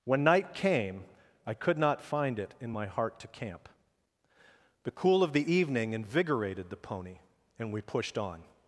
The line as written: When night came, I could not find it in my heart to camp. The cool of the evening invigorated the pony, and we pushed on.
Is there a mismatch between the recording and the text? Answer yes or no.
no